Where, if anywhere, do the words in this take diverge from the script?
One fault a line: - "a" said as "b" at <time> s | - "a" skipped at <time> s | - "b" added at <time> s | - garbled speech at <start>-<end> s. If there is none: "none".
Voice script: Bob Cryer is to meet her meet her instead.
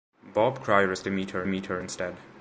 none